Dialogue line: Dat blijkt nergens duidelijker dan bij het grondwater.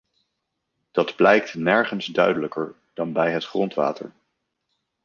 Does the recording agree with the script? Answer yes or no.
yes